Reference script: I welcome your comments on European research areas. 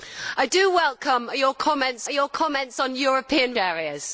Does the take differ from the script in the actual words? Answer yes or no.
yes